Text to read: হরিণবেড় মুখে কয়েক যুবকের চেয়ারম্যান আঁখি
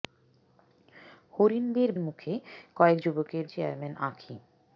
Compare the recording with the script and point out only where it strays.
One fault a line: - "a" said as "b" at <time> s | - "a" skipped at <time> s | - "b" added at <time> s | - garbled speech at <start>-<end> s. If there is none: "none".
none